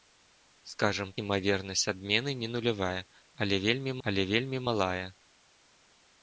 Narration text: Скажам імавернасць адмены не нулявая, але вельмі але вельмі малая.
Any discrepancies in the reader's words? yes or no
no